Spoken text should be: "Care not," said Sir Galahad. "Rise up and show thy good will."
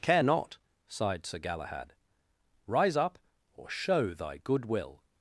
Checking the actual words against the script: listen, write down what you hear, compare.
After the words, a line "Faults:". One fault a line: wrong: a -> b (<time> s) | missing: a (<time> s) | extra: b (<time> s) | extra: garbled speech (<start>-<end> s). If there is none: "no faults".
"Care not," sighed Sir Galahad. "Rise up or show thy good will."
Faults:
wrong: said -> sighed (0.9 s)
wrong: and -> or (3.5 s)